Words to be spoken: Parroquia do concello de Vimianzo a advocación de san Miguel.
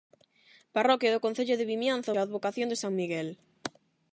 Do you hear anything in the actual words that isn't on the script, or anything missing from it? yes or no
no